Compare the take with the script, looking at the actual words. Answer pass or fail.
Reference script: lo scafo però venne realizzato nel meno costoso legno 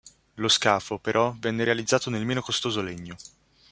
pass